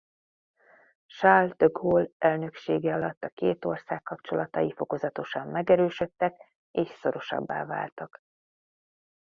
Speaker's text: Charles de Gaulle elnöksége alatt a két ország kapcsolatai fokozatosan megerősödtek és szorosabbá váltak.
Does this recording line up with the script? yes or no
yes